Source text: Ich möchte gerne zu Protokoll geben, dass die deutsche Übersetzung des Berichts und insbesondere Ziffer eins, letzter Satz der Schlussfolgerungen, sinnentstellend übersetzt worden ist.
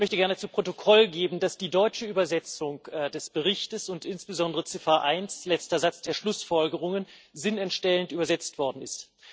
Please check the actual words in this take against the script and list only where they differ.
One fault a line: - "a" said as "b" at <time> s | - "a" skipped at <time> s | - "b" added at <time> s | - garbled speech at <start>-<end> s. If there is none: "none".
none